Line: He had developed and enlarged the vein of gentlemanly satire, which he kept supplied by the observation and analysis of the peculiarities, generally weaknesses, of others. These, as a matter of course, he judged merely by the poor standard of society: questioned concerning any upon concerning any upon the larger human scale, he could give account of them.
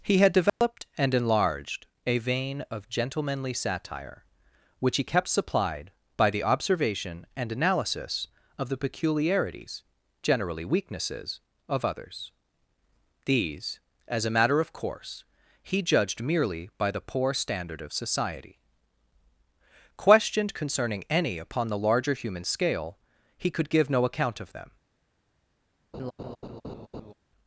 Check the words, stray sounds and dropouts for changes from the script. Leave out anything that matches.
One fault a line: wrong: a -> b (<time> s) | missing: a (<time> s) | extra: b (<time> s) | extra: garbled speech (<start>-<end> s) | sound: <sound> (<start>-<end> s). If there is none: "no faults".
sound: dropout (0.5-0.6 s)
wrong: the -> a (2.1 s)
missing: concerning any upon (21.7 s)
extra: no (23.9 s)
sound: laugh (25.9-27.1 s)